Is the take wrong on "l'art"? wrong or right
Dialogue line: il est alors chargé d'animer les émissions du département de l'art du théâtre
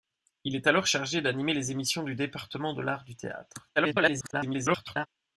right